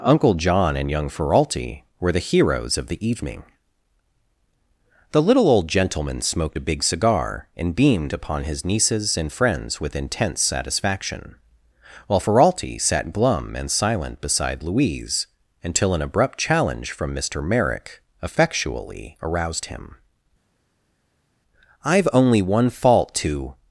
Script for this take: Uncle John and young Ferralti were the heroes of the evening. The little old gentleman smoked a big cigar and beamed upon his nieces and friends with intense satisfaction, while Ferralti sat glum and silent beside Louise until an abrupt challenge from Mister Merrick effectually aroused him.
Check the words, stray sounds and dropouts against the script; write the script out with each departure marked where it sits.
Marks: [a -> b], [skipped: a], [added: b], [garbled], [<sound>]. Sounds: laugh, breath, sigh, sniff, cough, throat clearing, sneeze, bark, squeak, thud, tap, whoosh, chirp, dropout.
Uncle John and young Ferralti were the heroes of the evening. The little old gentleman smoked a big cigar and beamed upon his nieces and friends with intense satisfaction, while Ferralti sat glum and silent beside Louise until an abrupt challenge from Mister Merrick effectually aroused him. [added: I've only one fault to]